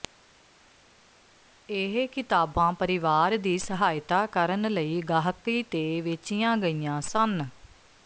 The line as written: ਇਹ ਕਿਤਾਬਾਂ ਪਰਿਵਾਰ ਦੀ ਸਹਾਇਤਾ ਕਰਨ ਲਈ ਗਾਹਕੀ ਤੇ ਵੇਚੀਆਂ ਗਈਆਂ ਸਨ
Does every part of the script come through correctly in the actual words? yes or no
yes